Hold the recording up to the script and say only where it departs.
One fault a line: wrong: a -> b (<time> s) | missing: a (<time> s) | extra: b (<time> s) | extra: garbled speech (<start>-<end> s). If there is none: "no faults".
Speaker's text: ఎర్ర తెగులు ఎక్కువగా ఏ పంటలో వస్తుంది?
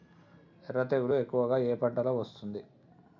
no faults